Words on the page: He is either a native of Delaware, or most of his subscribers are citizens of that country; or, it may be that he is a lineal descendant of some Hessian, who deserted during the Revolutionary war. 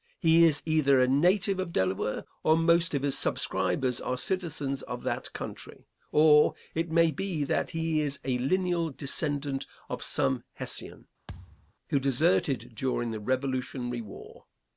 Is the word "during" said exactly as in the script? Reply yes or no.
yes